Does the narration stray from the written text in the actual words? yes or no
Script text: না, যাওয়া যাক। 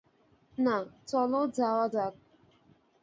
yes